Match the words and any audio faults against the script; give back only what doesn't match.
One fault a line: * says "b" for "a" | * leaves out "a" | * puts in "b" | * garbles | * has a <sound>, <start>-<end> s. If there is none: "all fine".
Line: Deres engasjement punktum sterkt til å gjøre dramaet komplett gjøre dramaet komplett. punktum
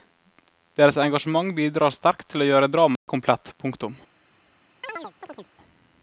* says "bidrar" for "punktum"
* has a dropout, 3.0-3.1 s
* leaves out "gjøre dramaet komplett"
* has a chirp, 4.8-5.5 s